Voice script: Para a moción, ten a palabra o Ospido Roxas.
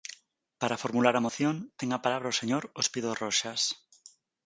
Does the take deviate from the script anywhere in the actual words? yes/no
yes